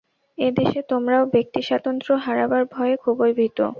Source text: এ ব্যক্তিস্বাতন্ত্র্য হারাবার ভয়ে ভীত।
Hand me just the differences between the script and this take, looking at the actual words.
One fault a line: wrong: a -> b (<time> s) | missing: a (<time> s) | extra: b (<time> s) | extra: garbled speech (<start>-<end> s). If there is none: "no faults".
extra: দেশে তোমরাও (0.5 s)
extra: খুবই (2.9 s)